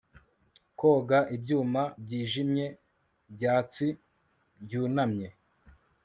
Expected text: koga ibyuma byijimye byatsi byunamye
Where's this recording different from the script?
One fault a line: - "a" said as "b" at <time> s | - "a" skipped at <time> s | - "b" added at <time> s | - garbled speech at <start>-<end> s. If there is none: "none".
none